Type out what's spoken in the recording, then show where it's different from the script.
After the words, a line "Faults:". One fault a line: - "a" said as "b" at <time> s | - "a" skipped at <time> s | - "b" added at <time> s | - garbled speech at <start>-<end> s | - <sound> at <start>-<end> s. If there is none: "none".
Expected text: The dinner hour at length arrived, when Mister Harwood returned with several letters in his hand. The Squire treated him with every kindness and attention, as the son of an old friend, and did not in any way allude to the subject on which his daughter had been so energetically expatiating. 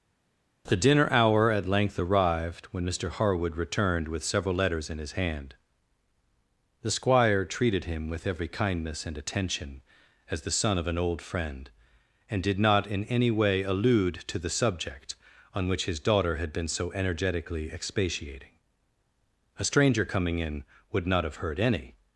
The dinner hour at length arrived, when Mister Harwood returned with several letters in his hand. The Squire treated him with every kindness and attention, as the son of an old friend, and did not in any way allude to the subject on which his daughter had been so energetically expatiating. A stranger coming in would not have heard any
Faults:
- "A stranger coming in would not have heard any" added at 19.6 s